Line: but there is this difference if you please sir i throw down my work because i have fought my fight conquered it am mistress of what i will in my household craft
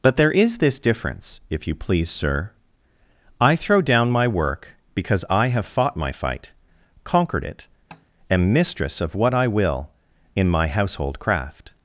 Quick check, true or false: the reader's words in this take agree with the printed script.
true